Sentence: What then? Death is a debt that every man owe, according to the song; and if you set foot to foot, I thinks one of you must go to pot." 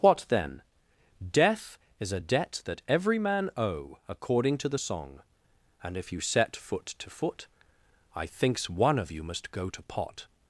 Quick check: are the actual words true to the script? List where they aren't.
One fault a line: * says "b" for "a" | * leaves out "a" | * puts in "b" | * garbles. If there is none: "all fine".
all fine